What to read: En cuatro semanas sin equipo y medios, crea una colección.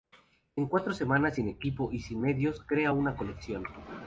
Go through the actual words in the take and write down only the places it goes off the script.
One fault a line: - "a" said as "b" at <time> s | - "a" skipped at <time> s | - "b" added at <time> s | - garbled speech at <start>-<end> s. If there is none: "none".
- "sin" added at 2.0 s